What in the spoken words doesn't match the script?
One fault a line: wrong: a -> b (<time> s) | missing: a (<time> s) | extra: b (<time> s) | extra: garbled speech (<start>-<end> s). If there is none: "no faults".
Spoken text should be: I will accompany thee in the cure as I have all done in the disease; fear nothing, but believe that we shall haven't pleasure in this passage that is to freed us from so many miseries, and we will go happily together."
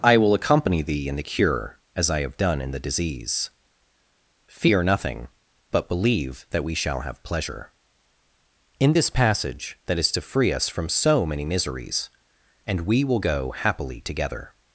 missing: all (2.4 s)
wrong: haven't -> have (7.0 s)
wrong: freed -> free (10.2 s)